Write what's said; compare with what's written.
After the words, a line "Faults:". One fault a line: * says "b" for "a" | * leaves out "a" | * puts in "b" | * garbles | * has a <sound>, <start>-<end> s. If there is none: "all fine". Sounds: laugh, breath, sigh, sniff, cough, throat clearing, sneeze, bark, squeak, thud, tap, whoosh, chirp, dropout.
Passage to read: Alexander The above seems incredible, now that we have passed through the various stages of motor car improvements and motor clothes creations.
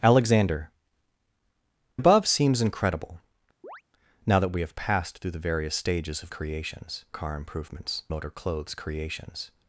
Alexander Above seems incredible, now that we have passed through the various stages of creations car improvements motor clothes creations.
Faults:
* leaves out "The"
* has a chirp, 3.6-3.8 s
* says "creations" for "motor"
* leaves out "and"